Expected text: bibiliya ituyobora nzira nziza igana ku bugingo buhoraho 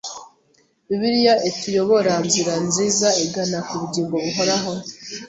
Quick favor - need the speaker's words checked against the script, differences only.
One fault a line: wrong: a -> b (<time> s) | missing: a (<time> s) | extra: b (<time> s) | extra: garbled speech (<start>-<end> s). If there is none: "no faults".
no faults